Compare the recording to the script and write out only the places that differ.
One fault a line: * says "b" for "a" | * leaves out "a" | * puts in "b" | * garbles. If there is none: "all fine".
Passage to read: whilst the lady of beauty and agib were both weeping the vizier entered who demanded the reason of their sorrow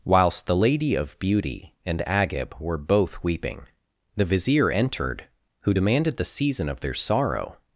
* says "season" for "reason"